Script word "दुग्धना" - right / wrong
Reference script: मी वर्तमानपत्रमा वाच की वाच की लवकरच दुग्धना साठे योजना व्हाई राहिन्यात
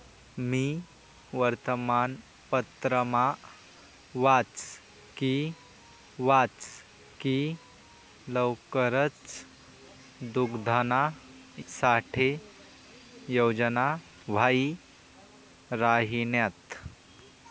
right